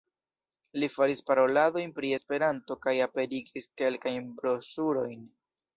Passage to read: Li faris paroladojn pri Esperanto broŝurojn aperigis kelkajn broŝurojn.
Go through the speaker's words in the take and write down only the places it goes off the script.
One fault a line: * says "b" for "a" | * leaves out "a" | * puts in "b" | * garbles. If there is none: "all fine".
* says "kaj" for "broŝurojn"